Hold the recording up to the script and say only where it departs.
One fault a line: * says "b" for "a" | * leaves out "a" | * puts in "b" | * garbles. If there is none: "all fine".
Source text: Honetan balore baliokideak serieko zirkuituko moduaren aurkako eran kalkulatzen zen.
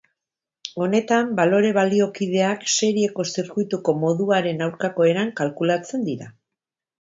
* says "dira" for "zen"